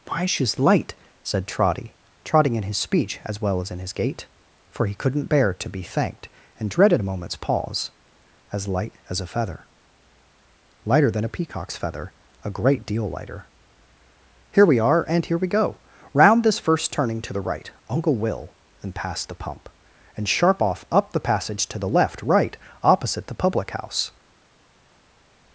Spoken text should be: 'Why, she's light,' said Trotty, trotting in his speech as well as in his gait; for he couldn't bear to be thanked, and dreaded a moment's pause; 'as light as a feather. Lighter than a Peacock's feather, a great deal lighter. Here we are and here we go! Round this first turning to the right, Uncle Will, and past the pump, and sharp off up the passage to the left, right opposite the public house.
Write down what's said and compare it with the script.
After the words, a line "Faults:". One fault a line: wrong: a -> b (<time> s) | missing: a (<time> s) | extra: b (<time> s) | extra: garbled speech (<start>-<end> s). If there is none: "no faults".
'Why, she's light,' said Trotty, trotting in his speech as well as in his gait; for he couldn't bear to be thanked, and dreaded a moment's pause; 'as light as a feather. Lighter than a Peacock's feather, a great deal lighter. Here we are and here we go! Round this first turning to the right, Uncle Will, and past the pump, and sharp off up the passage to the left, right opposite the public house.
Faults:
no faults